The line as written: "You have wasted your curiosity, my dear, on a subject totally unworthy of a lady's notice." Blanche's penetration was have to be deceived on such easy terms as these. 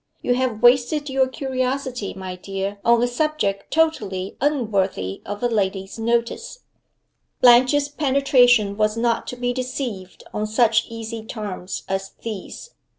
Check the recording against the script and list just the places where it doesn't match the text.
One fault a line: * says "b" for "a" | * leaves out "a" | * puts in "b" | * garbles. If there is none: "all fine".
* says "not" for "have"